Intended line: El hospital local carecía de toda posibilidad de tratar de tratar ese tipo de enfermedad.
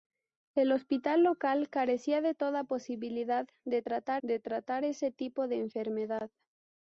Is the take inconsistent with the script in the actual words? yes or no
no